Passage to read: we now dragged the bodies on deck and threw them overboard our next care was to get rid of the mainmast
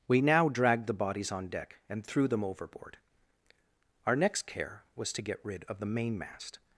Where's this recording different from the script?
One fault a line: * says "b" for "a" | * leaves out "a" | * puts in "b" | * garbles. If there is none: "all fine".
all fine